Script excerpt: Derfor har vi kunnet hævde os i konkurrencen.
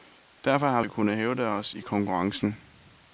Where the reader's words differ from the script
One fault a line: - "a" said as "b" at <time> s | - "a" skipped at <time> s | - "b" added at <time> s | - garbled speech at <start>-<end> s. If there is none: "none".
none